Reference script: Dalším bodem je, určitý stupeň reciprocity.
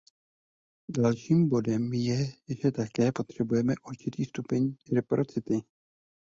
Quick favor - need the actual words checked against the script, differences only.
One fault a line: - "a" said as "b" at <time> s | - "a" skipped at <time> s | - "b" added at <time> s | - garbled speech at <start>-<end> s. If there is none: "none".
- "že také potřebujeme" added at 2.6 s